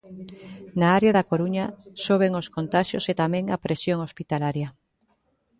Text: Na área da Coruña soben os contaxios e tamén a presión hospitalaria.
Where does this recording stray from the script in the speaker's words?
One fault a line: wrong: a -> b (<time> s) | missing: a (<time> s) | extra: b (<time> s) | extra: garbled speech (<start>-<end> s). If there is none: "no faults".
no faults